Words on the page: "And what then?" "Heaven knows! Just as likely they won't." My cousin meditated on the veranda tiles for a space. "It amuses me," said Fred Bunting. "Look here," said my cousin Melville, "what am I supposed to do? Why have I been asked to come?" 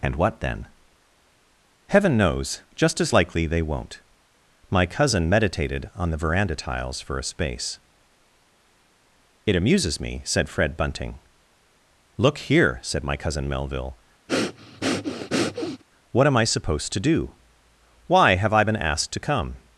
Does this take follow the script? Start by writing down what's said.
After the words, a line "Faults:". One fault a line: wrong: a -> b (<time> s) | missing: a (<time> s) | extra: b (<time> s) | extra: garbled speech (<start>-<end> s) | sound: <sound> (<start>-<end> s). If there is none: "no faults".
"And what then?" "Heaven knows! Just as likely they won't." My cousin meditated on the veranda tiles for a space. "It amuses me," said Fred Bunting. "Look here," said my cousin Melville, "what am I supposed to do? Why have I been asked to come?"
Faults:
sound: breath (14.3-15.8 s)